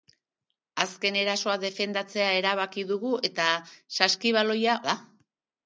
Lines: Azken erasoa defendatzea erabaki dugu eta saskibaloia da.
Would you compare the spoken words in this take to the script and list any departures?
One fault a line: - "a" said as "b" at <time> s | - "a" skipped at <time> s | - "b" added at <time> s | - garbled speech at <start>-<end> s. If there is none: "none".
none